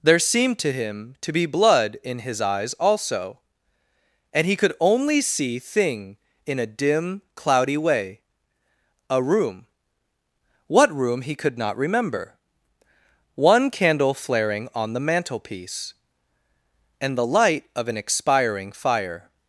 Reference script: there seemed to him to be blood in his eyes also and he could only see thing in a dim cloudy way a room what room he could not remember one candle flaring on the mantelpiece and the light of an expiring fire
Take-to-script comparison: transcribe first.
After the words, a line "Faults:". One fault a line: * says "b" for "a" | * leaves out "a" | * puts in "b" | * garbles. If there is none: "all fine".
there seemed to him to be blood in his eyes also and he could only see thing in a dim cloudy way a room what room he could not remember one candle flaring on the mantelpiece and the light of an expiring fire
Faults:
all fine